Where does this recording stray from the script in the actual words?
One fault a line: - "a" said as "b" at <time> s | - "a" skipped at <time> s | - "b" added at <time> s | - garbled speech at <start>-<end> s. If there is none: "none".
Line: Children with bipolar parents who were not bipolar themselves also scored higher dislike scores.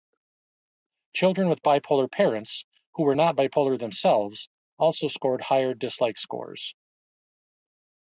none